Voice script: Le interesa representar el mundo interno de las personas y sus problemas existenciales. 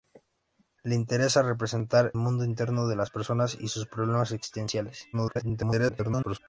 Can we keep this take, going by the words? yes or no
no